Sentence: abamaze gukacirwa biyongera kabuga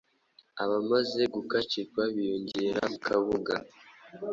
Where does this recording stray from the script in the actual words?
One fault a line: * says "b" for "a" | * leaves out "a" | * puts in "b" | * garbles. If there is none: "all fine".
all fine